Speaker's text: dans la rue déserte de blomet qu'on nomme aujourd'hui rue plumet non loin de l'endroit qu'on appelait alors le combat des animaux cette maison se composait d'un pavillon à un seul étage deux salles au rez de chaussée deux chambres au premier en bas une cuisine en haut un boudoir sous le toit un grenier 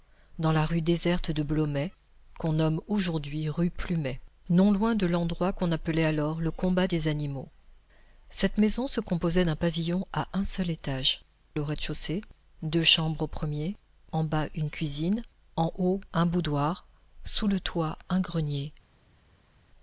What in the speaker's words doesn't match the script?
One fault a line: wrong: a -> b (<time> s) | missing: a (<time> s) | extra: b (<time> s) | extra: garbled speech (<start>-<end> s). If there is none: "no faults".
missing: deux salles (11.2 s)